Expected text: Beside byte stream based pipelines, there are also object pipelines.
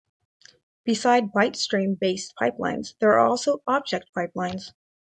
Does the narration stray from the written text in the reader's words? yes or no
no